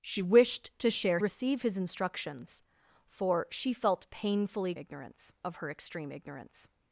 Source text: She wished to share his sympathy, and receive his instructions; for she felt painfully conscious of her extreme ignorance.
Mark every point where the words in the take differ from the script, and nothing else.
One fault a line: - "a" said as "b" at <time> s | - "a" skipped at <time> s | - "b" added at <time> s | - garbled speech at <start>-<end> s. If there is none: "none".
- "his sympathy and" skipped at 1.2 s
- "conscious" said as "ignorance" at 4.7 s